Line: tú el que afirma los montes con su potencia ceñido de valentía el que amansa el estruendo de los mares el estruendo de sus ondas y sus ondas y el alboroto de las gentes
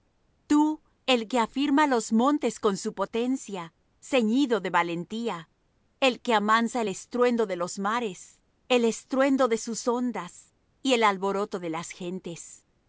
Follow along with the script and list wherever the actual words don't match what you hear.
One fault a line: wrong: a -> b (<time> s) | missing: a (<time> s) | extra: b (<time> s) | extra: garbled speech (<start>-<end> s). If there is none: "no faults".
missing: sus ondas y (10.9 s)